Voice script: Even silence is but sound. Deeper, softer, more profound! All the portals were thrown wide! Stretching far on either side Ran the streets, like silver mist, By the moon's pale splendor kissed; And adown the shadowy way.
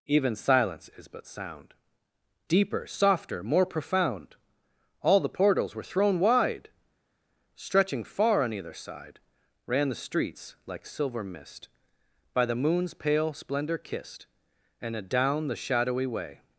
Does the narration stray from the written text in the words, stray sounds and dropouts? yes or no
no